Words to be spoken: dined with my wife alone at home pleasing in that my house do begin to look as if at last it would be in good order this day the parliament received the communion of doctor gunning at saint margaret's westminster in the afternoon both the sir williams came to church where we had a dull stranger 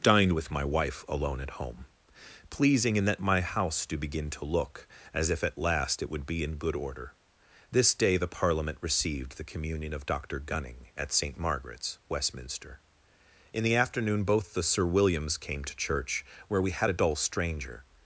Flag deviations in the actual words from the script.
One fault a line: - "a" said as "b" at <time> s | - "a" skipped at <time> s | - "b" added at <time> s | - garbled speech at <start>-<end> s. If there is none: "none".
none